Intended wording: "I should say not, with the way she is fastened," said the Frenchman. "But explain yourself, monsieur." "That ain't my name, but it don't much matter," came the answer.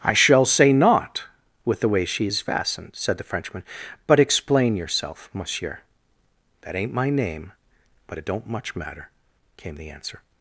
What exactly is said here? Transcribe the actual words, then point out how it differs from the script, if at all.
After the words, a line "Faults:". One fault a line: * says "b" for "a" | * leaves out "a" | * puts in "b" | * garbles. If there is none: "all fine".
"I shall say not, with the way she is fastened," said the Frenchman. "But explain yourself, monsieur." "That ain't my name, but it don't much matter," came the answer.
Faults:
* says "shall" for "should"